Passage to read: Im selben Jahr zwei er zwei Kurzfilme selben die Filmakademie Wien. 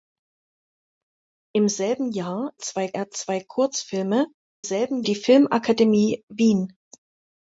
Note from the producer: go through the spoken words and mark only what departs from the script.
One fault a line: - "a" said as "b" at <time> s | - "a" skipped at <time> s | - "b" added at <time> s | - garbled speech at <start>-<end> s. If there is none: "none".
none